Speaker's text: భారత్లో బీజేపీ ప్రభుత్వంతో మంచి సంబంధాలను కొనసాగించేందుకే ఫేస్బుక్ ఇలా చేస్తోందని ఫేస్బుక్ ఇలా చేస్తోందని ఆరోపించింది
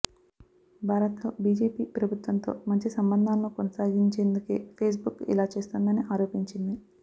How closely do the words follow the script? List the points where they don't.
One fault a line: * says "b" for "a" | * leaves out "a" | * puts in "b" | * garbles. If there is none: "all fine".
* leaves out "ఫేస్బుక్ ఇలా చేస్తోందని"